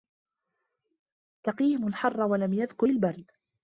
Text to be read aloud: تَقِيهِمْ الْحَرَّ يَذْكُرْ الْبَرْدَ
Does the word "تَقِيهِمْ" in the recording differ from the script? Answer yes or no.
no